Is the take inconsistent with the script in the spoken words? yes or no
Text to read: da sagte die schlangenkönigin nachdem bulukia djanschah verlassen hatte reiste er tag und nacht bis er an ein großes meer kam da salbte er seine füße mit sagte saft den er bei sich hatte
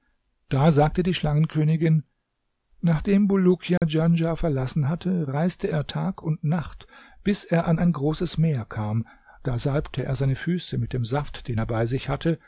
yes